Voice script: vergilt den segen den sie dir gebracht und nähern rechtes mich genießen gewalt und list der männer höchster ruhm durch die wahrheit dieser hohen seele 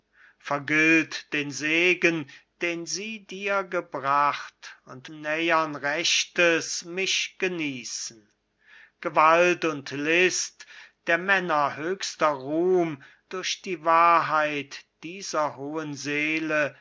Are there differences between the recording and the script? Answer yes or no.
no